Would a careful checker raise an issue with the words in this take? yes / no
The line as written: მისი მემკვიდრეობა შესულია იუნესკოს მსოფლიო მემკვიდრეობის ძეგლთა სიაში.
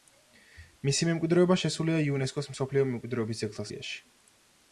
no